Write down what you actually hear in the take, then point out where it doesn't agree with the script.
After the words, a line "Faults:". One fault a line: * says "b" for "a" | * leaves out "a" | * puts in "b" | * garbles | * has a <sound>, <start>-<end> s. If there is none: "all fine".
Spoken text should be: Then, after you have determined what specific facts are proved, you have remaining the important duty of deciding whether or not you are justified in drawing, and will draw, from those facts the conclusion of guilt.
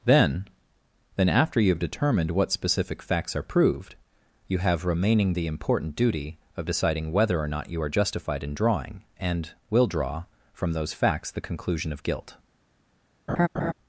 Then then, after you have determined what specific facts are proved, you have remaining the important duty of deciding whether or not you are justified in drawing, and will draw, from those facts the conclusion of guilt.
Faults:
* puts in "then"
* has a laugh, 13.3-13.7 s